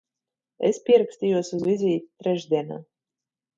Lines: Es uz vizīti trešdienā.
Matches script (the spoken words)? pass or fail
fail